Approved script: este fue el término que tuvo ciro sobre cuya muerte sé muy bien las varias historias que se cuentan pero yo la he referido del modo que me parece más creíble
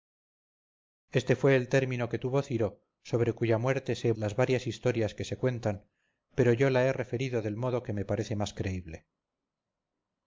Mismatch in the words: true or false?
true